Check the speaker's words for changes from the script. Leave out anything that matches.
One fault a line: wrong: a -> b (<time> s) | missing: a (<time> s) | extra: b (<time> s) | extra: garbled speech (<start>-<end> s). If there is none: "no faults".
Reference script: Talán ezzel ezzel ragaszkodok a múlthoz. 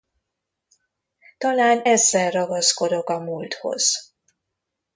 missing: ezzel (2.3 s)